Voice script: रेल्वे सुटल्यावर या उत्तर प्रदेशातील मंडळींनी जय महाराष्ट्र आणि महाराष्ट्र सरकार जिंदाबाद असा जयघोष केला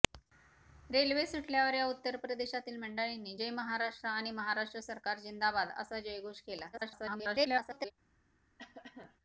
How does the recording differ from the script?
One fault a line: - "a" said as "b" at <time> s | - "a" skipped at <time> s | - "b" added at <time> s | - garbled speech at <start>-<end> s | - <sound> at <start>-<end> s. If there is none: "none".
- garbled speech at 6.7-7.9 s
- cough at 8.6-9.2 s